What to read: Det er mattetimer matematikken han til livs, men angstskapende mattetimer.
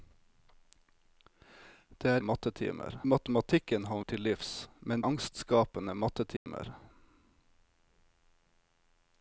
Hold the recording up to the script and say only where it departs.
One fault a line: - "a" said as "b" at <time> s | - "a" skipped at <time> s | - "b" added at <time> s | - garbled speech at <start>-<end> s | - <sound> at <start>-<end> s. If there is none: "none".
- dropout at 6.4-6.5 s